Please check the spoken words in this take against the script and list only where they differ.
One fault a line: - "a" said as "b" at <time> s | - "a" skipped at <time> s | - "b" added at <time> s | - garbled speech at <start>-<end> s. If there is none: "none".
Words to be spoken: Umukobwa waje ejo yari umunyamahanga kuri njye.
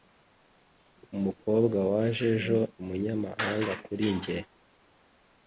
- "yari" skipped at 2.6 s